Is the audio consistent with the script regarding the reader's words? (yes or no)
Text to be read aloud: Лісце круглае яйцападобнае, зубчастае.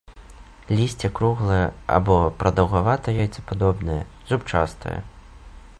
no